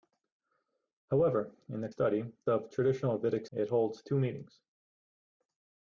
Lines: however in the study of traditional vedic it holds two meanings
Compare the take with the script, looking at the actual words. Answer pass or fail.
pass